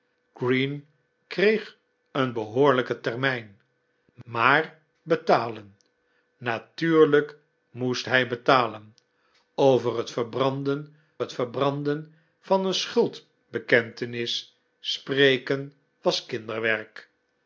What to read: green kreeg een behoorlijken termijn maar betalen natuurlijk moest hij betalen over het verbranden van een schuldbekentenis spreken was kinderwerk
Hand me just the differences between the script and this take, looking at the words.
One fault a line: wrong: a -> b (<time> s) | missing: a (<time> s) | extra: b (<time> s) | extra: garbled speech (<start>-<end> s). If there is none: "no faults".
extra: het verbranden (11.2 s)